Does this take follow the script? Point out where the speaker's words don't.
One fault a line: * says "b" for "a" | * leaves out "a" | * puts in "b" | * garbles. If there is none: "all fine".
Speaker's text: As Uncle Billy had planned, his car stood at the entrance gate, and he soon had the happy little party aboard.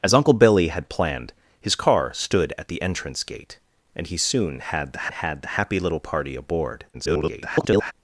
* puts in "had the"
* garbles